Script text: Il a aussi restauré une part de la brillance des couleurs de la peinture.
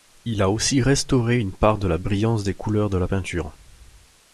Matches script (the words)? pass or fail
pass